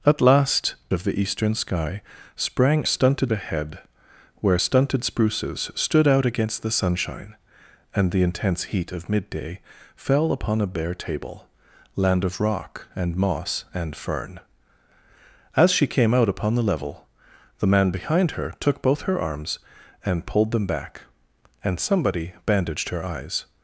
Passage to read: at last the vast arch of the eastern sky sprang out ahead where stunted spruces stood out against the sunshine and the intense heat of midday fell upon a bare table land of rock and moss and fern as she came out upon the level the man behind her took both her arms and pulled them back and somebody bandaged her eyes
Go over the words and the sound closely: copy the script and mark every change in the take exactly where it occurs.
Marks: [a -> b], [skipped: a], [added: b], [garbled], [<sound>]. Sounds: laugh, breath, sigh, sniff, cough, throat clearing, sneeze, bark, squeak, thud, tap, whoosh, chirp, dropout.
at last [skipped: the vast arch] of the eastern sky sprang [out -> stunted] ahead where stunted spruces stood out against the sunshine and the intense heat of midday fell upon a bare table land of rock and moss and fern as she came out upon the level the man behind her took both her arms and pulled them back and somebody bandaged her eyes